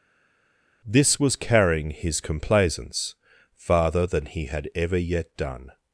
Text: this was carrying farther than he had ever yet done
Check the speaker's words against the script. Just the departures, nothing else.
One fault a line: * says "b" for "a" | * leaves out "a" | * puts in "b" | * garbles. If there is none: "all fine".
* puts in "his complaisance"